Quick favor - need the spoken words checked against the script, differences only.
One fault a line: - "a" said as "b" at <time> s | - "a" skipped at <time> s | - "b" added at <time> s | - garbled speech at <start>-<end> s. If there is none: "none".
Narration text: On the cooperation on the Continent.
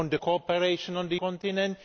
none